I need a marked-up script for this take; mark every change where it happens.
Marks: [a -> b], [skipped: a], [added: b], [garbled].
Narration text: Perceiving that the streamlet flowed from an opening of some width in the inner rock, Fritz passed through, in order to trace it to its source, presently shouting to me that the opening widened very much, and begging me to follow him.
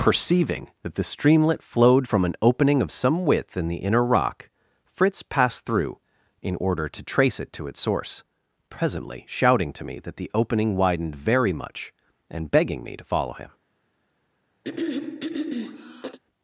Perceiving that the streamlet flowed from an opening of some width in the inner rock, Fritz passed through, in order to trace it to its source, presently shouting to me that the opening widened very much, and begging me to follow him.